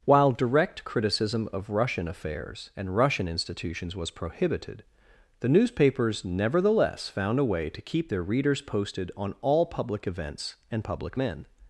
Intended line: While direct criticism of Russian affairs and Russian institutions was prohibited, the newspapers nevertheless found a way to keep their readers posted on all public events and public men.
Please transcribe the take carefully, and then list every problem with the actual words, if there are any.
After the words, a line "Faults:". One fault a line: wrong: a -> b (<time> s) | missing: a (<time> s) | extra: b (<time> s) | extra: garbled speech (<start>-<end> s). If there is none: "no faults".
While direct criticism of Russian affairs and Russian institutions was prohibited, the newspapers nevertheless found a way to keep their readers posted on all public events and public men.
Faults:
no faults